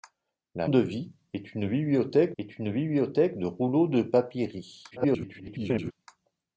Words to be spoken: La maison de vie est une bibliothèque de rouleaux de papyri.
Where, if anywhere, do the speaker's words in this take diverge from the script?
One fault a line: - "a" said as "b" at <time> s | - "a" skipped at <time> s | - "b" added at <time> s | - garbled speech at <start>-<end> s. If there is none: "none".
- "maison" skipped at 0.7 s
- "est une bibliothèque" added at 2.4 s
- garbled speech at 4.9-5.9 s